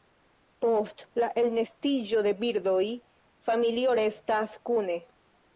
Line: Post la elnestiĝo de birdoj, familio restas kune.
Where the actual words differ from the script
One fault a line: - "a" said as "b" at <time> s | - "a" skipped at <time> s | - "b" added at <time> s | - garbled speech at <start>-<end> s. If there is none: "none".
none